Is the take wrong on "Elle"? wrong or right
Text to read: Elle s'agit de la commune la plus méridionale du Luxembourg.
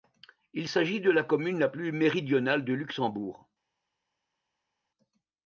wrong